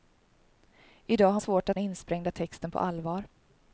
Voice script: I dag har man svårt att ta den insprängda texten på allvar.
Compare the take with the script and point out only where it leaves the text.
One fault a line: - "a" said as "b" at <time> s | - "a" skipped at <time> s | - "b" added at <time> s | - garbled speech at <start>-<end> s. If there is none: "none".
- "man" skipped at 1.4 s
- "ta den" skipped at 1.8 s